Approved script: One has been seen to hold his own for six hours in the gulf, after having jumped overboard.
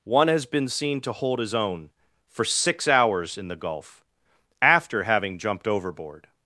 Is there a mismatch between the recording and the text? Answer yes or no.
no